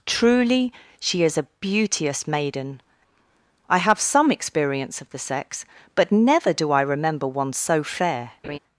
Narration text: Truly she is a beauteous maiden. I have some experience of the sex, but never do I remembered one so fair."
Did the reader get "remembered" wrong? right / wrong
wrong